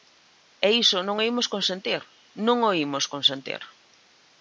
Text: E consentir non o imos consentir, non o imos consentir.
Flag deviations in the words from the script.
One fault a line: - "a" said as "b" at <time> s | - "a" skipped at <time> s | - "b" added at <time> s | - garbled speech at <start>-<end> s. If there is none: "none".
- "consentir" said as "iso" at 0.8 s